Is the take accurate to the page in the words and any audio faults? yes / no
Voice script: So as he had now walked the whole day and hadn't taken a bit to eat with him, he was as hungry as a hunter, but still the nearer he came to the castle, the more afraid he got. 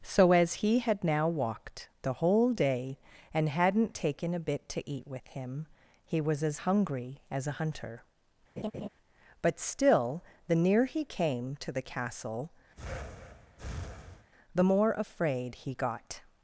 no